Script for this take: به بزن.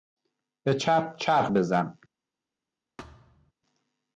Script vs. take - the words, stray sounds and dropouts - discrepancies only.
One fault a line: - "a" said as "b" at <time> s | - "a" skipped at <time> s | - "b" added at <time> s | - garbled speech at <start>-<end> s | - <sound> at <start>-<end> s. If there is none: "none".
- "چپ چرخ" added at 0.7 s
- thud at 3.0-3.5 s